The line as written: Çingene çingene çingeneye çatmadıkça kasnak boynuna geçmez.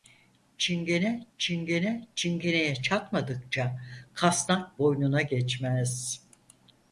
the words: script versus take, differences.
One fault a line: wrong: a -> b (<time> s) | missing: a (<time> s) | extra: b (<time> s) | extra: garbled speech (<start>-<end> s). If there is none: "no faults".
no faults